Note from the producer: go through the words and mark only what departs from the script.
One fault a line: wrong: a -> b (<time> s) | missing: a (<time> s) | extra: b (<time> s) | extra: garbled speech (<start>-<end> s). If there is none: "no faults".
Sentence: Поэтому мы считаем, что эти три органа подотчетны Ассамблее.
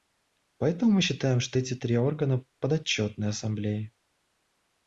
no faults